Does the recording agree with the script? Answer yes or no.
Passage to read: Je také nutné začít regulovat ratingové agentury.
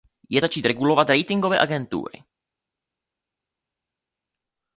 no